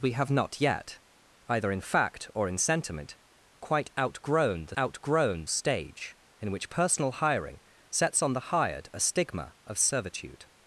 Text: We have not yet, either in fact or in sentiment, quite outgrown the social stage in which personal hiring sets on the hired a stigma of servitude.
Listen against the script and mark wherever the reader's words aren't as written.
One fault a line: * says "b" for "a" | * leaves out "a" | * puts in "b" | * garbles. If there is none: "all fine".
* says "outgrown" for "social"